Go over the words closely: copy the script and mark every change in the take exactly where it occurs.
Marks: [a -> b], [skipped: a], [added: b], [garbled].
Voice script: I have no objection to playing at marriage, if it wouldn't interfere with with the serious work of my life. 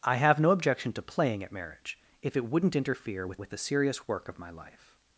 I have no objection to playing at marriage, if it wouldn't interfere with with the serious work of my life.